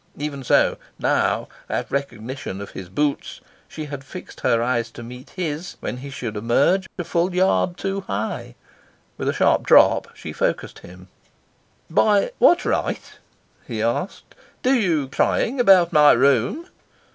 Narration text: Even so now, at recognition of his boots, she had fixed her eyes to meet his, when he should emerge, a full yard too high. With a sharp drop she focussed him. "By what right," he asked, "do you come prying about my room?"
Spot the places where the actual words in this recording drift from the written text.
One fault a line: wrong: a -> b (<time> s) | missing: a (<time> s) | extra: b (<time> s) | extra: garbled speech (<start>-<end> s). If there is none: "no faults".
missing: come (15.1 s)